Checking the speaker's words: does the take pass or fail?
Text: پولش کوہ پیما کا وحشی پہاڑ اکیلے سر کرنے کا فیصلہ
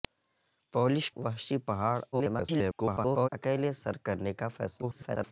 fail